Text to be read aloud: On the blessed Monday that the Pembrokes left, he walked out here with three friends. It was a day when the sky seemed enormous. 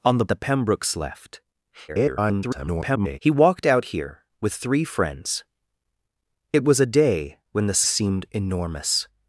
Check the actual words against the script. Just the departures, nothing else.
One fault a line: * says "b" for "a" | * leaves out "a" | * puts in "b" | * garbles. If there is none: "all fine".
* leaves out "blessed Monday that"
* garbles
* leaves out "sky"